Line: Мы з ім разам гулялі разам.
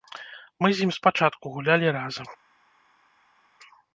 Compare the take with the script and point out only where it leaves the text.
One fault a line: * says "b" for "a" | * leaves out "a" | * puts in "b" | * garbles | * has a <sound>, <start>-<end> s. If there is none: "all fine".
* says "спачатку" for "разам"